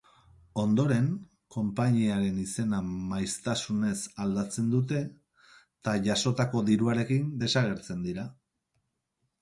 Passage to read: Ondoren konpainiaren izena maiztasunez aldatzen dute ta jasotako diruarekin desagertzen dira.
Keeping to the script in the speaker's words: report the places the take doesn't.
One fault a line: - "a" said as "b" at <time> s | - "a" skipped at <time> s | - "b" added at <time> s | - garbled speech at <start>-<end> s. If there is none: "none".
none